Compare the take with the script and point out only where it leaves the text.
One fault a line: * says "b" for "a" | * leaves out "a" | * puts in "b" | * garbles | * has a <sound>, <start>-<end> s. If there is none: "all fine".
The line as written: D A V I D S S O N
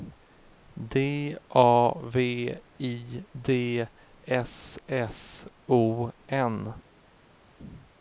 all fine